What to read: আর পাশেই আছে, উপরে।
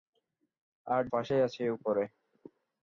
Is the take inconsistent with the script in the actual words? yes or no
no